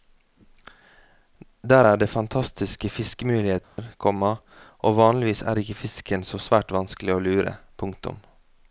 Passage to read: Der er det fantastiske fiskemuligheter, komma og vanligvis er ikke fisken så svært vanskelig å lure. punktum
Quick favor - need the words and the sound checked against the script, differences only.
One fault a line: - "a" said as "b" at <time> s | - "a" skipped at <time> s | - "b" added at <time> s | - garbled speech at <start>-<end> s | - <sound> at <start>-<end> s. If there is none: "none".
- dropout at 3.6-3.8 s